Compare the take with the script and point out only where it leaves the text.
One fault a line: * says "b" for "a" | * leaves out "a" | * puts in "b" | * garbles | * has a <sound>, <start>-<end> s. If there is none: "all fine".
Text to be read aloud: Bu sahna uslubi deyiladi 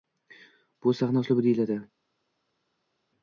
all fine